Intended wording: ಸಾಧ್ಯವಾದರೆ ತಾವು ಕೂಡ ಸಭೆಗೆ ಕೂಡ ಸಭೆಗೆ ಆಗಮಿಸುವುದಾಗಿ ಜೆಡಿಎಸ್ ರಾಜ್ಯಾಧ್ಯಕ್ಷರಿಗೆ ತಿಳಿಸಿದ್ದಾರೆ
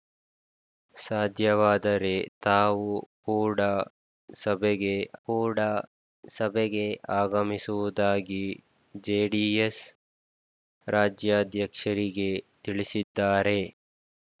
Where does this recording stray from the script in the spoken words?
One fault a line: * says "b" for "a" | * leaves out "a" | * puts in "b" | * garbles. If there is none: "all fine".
all fine